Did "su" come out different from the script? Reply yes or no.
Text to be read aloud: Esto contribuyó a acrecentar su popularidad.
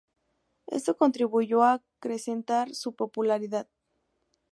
no